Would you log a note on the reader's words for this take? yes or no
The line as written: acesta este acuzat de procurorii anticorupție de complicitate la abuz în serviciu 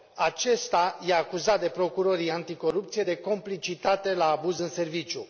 no